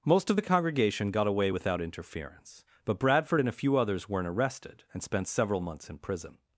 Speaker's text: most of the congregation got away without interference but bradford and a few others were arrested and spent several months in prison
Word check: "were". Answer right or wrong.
wrong